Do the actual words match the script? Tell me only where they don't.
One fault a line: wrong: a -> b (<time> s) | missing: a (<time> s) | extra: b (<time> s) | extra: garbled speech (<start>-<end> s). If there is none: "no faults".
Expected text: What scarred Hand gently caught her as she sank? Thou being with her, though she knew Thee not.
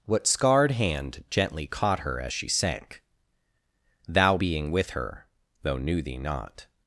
missing: she (5.8 s)